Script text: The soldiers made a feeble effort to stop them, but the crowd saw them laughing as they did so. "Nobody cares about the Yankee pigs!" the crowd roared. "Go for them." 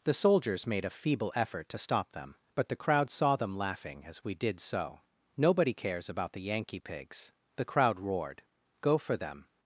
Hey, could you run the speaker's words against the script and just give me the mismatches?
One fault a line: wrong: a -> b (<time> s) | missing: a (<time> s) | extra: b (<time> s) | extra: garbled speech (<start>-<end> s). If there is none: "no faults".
wrong: they -> we (4.2 s)